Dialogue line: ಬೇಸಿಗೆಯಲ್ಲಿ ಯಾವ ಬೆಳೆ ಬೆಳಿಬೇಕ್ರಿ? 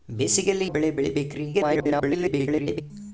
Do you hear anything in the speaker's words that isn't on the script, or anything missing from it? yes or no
yes